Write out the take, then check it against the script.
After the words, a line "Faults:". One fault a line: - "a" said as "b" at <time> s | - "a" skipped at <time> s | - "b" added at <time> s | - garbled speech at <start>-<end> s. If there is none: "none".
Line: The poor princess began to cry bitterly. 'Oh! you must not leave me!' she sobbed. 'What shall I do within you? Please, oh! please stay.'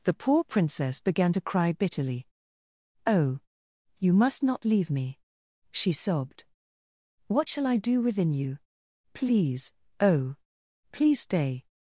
The poor princess began to cry bitterly. 'Oh! you must not leave me!' she sobbed. 'What shall I do within you? Please, oh! please stay.'
Faults:
none